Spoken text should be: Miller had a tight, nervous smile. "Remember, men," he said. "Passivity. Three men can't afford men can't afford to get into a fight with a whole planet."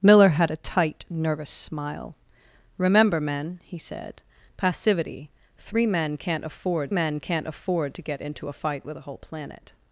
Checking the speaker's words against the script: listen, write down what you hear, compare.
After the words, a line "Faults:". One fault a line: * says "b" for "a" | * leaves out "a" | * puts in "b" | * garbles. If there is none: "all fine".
Miller had a tight, nervous smile. "Remember, men," he said. "Passivity. Three men can't afford men can't afford to get into a fight with a whole planet."
Faults:
all fine